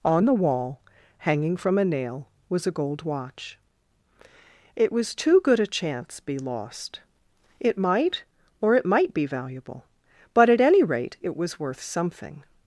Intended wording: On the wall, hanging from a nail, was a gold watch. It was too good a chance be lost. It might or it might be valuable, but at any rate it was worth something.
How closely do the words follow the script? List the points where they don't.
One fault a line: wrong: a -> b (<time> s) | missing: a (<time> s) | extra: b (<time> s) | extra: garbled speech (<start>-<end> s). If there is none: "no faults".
no faults